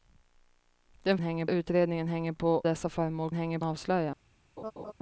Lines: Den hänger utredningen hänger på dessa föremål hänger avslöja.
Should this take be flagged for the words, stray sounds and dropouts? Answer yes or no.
yes